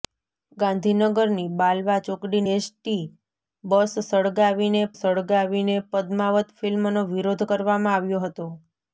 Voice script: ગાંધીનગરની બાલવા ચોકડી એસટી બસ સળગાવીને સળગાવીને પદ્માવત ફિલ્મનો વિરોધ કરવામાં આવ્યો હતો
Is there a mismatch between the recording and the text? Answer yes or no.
no